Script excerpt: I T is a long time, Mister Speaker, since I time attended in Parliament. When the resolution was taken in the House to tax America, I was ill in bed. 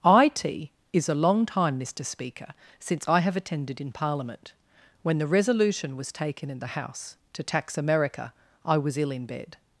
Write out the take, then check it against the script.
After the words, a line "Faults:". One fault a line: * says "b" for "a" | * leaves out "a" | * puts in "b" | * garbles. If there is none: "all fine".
I T is a long time, Mister Speaker, since I have attended in Parliament. When the resolution was taken in the House to tax America, I was ill in bed.
Faults:
* says "have" for "time"